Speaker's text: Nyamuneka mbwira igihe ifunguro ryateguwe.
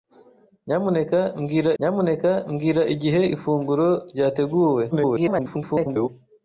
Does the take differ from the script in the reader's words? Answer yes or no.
yes